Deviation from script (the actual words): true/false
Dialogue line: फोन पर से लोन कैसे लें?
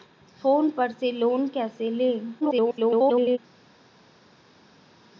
true